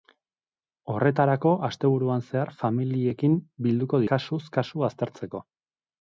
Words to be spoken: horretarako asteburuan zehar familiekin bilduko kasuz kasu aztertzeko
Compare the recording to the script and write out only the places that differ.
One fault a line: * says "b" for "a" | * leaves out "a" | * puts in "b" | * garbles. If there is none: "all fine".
all fine